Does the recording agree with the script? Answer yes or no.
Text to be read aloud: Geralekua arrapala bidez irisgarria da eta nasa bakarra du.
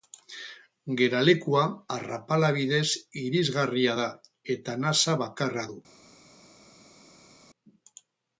yes